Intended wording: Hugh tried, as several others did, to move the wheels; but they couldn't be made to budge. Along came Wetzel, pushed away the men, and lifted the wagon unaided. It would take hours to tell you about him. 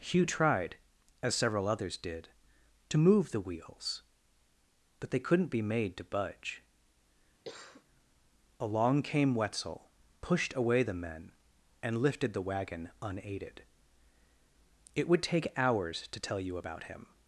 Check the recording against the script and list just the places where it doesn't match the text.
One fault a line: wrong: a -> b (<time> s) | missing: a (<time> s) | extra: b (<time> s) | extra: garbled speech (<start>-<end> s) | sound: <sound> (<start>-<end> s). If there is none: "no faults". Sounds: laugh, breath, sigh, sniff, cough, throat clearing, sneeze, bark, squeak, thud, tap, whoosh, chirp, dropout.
sound: cough (7.4-7.8 s)